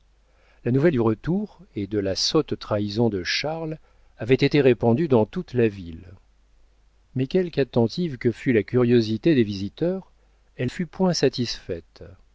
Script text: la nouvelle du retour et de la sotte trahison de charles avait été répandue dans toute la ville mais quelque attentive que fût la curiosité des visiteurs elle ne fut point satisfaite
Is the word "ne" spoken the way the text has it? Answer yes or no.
no